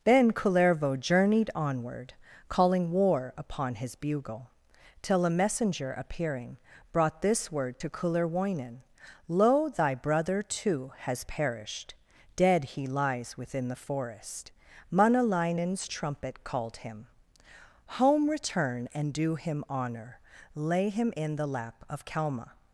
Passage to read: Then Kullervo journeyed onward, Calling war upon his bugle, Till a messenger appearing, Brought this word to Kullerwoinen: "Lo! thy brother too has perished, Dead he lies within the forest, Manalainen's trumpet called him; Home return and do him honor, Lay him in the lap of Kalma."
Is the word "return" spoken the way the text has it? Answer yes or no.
yes